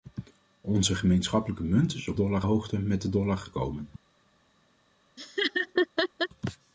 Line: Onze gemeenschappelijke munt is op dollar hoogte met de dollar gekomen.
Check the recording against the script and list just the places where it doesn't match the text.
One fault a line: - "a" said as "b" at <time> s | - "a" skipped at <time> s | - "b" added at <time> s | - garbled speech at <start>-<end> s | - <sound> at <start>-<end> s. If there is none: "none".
- laugh at 5.2-6.3 s